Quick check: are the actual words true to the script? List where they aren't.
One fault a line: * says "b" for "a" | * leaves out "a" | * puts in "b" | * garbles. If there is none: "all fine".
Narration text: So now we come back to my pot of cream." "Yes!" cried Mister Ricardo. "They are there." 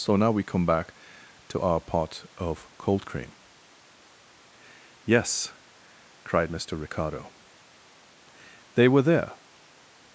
* says "our" for "my"
* puts in "cold"
* says "were" for "are"